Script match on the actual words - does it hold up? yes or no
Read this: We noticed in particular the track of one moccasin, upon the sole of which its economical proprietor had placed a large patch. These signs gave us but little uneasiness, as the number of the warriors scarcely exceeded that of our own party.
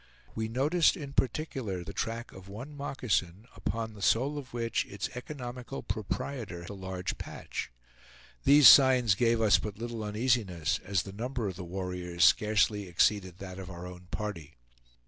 no